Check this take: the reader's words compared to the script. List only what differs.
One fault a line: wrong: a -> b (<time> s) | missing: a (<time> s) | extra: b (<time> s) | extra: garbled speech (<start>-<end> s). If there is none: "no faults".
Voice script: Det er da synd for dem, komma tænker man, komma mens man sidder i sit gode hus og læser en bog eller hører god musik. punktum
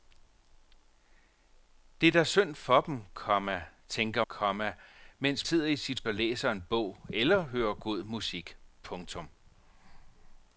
missing: man (4.2 s)
missing: man (5.5 s)
missing: gode hus (6.0 s)